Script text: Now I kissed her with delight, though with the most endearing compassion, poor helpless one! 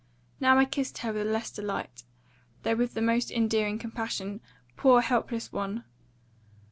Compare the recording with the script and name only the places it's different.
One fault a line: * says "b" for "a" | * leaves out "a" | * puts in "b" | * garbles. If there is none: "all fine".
* puts in "less"